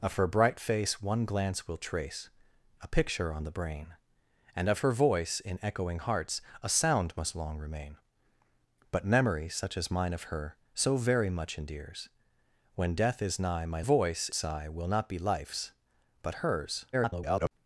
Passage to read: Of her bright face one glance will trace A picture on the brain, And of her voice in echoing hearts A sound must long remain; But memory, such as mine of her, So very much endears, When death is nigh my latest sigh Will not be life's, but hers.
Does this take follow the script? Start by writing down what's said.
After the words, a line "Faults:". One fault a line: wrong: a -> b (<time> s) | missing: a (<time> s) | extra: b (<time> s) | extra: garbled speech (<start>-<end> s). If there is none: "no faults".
Of her bright face one glance will trace A picture on the brain, And of her voice in echoing hearts A sound must long remain; But memory, such as mine of her, So very much endears, When death is nigh my voice sigh Will not be life's, but hers. [garbled]
Faults:
wrong: latest -> voice (13.8 s)
extra: garbled speech (16.9-17.5 s)